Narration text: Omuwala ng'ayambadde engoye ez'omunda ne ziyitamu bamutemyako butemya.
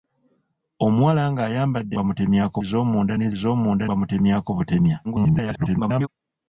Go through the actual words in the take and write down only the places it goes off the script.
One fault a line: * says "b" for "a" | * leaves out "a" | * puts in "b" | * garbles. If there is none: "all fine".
* says "bamutemyako" for "engoye"
* says "ez'omunda" for "ziyitamu"
* garbles